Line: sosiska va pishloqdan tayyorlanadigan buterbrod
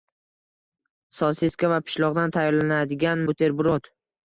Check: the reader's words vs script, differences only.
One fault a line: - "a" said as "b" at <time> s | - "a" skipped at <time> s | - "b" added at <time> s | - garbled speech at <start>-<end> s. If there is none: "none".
none